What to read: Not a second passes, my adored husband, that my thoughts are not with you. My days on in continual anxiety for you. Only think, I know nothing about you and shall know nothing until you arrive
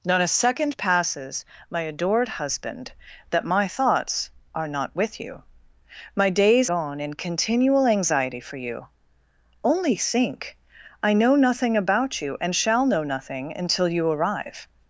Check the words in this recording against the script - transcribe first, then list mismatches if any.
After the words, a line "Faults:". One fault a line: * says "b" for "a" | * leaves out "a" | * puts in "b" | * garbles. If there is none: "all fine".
Not a second passes, my adored husband, that my thoughts are not with you. My days on in continual anxiety for you. Only think, I know nothing about you and shall know nothing until you arrive
Faults:
all fine